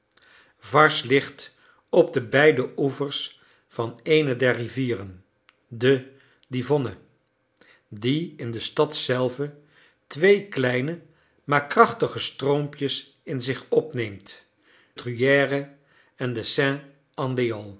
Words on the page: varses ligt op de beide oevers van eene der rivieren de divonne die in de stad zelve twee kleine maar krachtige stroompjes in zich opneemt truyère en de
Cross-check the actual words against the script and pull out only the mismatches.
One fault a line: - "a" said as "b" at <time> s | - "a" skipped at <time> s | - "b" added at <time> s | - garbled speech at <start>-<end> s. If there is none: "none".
none